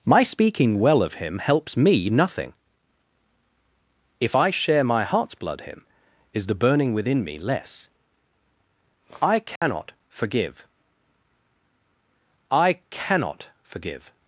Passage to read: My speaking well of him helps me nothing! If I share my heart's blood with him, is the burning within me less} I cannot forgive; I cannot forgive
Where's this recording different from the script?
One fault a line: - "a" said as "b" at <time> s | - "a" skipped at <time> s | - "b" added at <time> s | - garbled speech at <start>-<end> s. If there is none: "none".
- "with" skipped at 5.6 s